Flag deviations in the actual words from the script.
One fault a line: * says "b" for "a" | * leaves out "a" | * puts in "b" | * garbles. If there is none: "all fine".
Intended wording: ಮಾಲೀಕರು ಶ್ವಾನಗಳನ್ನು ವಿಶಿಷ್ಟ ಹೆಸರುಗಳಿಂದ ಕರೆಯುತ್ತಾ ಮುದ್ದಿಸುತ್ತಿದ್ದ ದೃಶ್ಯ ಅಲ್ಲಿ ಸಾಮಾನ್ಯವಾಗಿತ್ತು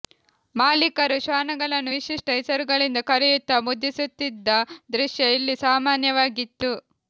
* says "ಇಲ್ಲಿ" for "ಅಲ್ಲಿ"